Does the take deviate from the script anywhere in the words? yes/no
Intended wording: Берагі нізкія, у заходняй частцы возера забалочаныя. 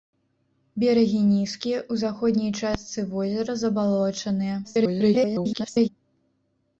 yes